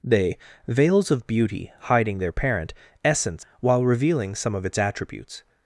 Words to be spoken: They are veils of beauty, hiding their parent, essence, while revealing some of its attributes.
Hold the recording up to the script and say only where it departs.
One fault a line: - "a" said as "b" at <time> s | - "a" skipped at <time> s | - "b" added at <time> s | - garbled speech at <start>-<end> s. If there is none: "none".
- "are" skipped at 0.4 s